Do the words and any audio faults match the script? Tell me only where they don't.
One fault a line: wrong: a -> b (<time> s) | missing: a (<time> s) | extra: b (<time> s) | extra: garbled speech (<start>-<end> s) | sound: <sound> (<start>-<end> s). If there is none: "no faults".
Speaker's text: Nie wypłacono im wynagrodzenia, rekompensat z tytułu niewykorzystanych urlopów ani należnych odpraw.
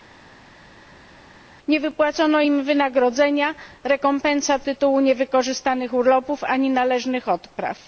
missing: z (4.7 s)